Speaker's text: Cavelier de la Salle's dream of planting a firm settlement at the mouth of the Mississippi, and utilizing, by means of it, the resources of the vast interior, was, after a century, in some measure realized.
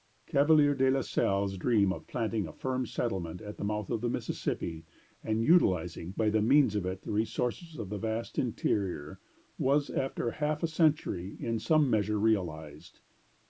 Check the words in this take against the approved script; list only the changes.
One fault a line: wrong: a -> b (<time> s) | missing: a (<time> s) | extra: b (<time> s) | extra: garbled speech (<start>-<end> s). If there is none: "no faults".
extra: half (10.3 s)